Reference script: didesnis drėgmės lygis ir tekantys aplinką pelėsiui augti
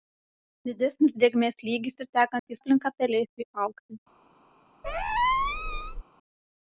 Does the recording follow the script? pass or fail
pass